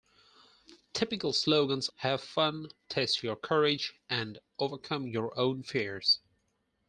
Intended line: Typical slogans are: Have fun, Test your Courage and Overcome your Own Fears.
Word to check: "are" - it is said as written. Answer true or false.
false